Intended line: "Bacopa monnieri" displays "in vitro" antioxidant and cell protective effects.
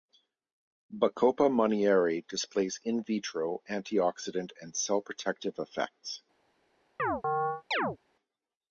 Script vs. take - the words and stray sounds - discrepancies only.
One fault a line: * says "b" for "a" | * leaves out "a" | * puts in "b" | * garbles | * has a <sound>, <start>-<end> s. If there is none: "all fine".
* has a chirp, 7.0-8.0 s